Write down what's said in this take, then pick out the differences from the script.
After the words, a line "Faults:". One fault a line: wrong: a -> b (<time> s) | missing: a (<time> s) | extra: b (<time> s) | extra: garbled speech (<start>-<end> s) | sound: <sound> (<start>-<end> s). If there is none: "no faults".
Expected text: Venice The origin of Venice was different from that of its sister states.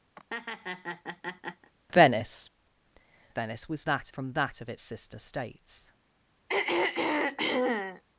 Venice Venice was that from that of its sister states.
Faults:
sound: laugh (0.2-1.7 s)
missing: The origin of (2.5 s)
wrong: different -> that (3.8 s)
sound: throat clearing (6.5-8.0 s)